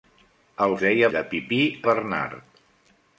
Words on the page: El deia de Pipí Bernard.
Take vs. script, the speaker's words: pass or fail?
pass